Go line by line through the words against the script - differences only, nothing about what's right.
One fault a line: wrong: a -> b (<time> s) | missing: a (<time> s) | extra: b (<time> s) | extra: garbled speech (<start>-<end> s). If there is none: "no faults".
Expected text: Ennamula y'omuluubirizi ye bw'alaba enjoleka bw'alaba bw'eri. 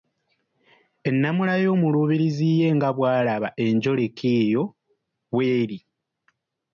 extra: nga (2.8 s)
wrong: bw'alaba -> eyo (4.4 s)